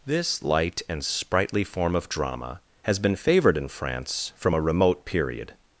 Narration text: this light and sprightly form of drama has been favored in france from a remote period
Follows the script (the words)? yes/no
yes